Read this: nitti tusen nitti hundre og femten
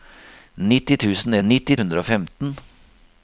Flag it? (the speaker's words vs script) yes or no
no